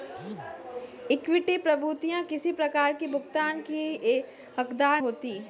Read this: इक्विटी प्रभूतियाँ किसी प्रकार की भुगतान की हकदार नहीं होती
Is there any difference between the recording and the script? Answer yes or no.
yes